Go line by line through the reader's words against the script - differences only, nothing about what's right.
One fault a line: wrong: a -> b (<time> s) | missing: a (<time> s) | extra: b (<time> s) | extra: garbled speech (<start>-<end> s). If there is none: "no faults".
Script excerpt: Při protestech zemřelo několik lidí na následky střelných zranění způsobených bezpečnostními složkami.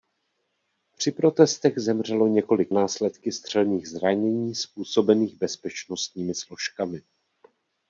missing: lidí na (2.7 s)